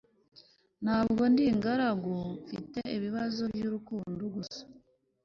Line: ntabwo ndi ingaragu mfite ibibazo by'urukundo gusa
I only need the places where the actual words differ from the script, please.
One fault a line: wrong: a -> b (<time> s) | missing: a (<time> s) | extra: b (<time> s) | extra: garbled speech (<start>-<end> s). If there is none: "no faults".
no faults